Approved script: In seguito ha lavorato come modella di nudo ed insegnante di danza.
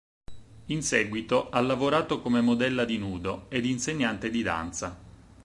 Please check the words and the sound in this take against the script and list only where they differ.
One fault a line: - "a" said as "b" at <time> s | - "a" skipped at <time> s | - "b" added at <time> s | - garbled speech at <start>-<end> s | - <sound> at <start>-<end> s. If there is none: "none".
none